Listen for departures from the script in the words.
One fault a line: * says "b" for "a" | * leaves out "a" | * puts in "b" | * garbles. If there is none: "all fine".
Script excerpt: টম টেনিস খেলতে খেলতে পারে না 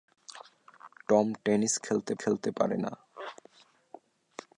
all fine